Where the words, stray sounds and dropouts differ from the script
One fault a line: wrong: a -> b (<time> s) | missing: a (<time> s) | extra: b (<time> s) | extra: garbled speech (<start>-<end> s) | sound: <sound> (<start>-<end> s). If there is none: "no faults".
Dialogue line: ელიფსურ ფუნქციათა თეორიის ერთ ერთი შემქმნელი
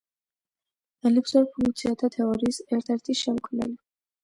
no faults